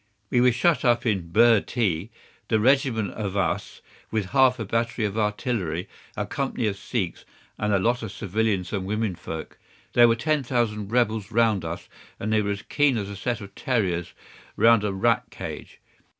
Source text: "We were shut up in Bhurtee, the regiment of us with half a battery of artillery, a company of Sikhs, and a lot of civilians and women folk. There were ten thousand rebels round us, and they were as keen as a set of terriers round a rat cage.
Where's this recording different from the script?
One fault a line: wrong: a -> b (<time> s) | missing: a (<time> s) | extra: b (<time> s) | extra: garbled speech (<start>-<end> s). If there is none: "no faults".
no faults